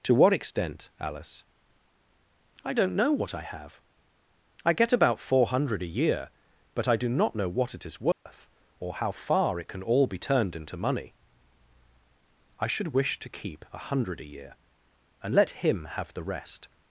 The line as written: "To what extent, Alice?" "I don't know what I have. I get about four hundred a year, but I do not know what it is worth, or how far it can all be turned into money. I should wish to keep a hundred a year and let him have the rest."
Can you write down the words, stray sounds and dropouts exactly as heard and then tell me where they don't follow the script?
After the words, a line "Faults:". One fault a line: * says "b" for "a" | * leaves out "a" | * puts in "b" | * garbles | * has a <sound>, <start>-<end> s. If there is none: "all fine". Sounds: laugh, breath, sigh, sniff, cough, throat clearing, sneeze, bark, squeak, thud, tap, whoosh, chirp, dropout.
"To what extent, Alice?" "I don't know what I have. I get about four hundred a year, but I do not know what it is worth, or how far it can all be turned into money. I should wish to keep a hundred a year and let him have the rest."
Faults:
* has a dropout, 8.1-8.3 s